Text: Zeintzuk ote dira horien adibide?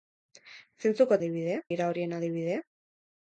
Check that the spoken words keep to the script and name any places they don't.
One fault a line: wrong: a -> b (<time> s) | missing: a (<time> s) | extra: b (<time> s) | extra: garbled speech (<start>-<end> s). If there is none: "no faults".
wrong: ote -> adibide (1.2 s)